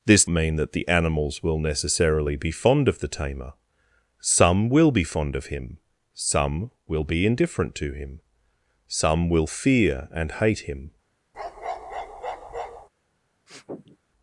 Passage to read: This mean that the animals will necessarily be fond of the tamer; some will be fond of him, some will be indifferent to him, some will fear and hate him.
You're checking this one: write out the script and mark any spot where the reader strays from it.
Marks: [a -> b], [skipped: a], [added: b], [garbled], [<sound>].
This mean that the animals will necessarily be fond of the tamer; some will be fond of him, some will be indifferent to him, some will fear and hate him. [bark] [sniff]